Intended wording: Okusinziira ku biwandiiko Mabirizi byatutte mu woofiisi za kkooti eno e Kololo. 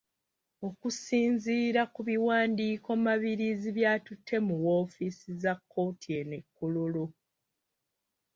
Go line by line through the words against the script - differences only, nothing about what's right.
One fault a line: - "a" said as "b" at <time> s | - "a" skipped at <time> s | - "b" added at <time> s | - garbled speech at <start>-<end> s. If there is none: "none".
none